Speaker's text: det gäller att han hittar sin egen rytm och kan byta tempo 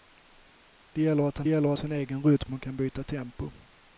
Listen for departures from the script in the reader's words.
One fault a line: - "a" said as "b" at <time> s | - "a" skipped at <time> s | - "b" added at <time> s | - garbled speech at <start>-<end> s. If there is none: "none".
- "hittar" said as "gäller" at 1.5 s